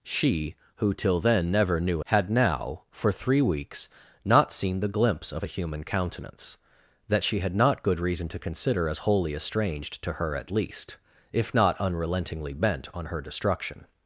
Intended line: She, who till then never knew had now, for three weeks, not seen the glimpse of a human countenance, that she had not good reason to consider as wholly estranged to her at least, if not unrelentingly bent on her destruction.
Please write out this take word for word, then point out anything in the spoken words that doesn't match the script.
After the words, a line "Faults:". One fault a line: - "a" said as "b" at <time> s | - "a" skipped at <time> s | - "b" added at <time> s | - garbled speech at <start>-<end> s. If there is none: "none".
She, who till then never knew had now, for three weeks, not seen the glimpse of a human countenance, that she had not good reason to consider as wholly estranged to her at least, if not unrelentingly bent on her destruction.
Faults:
none